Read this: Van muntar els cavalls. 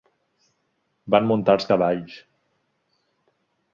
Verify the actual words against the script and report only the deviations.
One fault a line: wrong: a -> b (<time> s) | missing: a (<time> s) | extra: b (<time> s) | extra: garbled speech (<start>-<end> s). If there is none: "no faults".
no faults